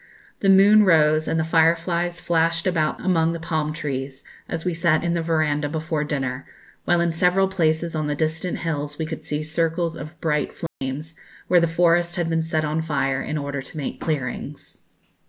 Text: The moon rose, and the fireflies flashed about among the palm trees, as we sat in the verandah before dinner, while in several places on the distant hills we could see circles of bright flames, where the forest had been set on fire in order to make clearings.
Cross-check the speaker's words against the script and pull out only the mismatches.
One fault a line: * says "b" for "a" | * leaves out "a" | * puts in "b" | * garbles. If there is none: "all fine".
all fine